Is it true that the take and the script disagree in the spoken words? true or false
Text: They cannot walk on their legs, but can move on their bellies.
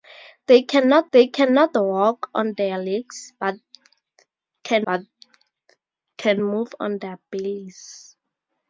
true